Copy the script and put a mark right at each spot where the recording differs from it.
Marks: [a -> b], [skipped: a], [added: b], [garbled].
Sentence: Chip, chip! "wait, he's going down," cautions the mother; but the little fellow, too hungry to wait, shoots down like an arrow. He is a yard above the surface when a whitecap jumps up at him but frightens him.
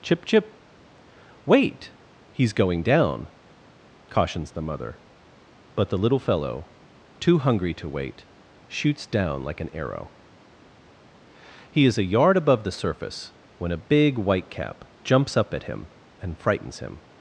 Chip, chip! "wait, he's going down," cautions the mother; but the little fellow, too hungry to wait, shoots down like an arrow. He is a yard above the surface when a [added: big] whitecap jumps up at him [but -> and] frightens him.